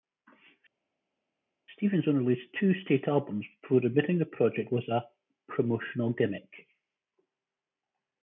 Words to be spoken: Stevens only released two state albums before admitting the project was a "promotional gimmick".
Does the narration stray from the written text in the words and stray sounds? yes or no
no